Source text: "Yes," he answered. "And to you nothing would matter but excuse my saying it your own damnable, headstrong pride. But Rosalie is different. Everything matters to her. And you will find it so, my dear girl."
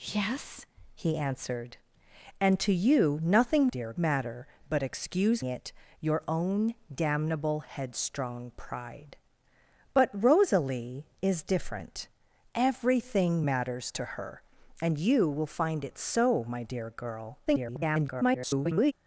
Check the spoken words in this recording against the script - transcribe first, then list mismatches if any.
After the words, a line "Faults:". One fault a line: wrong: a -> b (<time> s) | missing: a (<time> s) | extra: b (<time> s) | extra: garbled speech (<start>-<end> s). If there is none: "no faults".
"Yes," he answered. "And to you nothing dear matter but excuse it your own damnable, headstrong pride. But Rosalie is different. Everything matters to her. And you will find it so, my dear girl." [garbled]
Faults:
wrong: would -> dear (3.7 s)
missing: my saying (5.4 s)
extra: garbled speech (17.5-18.9 s)